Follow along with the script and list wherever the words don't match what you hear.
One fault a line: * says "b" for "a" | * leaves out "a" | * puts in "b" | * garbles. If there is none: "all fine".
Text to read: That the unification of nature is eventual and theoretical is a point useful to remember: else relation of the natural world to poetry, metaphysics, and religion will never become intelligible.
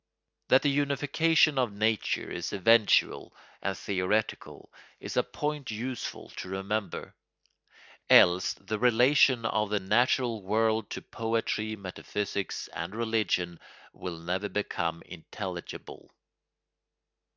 * puts in "the"